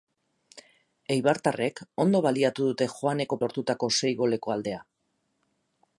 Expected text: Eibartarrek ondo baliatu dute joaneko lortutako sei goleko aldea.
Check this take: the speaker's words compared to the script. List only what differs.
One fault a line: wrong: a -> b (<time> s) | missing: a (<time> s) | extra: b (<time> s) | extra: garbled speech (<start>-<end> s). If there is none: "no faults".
no faults